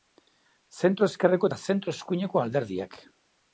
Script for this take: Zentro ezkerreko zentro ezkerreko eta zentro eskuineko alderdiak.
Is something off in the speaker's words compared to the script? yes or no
yes